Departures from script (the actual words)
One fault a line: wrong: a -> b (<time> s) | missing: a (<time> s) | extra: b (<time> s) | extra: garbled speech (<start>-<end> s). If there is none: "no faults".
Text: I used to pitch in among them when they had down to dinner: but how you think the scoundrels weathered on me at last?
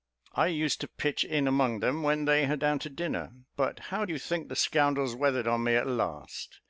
no faults